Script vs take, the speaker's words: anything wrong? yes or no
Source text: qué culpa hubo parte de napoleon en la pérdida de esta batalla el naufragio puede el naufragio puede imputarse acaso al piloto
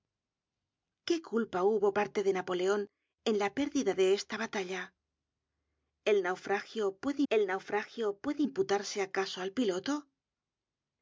no